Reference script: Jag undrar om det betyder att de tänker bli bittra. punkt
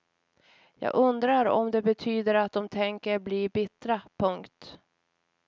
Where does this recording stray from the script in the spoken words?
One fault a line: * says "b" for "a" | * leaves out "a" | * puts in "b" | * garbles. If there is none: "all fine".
all fine